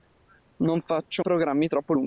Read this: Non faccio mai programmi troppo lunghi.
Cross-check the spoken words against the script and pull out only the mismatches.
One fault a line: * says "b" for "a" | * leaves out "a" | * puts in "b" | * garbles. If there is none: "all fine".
* leaves out "mai"